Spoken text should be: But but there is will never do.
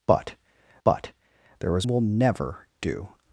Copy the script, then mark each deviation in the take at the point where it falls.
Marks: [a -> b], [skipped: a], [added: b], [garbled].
But but there is will never do.